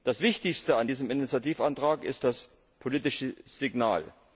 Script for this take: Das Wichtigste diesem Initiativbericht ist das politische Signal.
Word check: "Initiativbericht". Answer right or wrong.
right